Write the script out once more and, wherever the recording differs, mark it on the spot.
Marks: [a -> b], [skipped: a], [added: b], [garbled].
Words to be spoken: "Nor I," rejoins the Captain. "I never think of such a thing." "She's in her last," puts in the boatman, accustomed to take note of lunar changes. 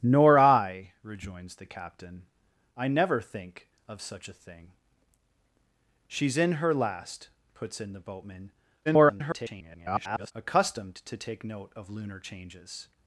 "Nor I," rejoins the Captain. "I never think of such a thing." "She's in her last," puts in the boatman, [garbled] accustomed to take note of lunar changes.